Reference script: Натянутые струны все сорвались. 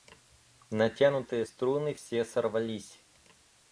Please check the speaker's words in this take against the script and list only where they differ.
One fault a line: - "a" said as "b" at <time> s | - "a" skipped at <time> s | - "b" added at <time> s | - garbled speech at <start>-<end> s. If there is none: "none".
none